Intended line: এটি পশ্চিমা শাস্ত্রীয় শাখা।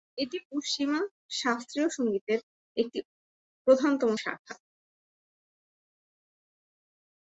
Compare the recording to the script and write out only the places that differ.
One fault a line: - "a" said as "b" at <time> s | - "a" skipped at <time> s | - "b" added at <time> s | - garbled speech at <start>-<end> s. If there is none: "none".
- "সঙ্গীতের একটি প্রধানতম" added at 1.9 s